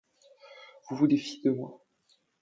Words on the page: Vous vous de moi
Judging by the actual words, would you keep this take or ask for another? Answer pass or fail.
fail